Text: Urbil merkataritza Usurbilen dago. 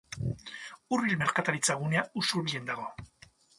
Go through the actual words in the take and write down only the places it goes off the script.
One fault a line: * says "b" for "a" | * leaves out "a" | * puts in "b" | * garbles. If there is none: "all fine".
* puts in "gunea"